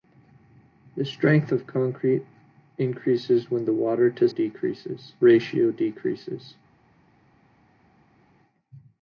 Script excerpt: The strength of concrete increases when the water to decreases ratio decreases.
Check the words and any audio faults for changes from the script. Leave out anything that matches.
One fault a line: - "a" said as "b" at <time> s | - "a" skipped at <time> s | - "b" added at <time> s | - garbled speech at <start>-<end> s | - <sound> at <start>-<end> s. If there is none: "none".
none